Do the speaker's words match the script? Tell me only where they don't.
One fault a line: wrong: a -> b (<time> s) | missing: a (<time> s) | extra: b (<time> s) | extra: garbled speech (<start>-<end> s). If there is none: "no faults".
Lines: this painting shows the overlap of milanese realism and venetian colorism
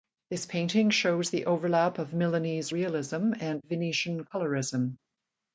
no faults